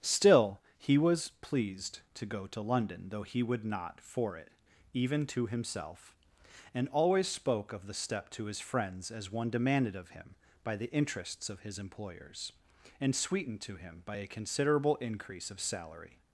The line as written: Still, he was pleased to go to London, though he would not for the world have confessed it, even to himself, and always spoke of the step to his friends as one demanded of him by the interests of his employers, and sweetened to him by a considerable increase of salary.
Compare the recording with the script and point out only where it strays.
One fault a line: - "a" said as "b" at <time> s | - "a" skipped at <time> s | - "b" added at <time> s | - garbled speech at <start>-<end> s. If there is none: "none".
- "the world have confessed" skipped at 4.3 s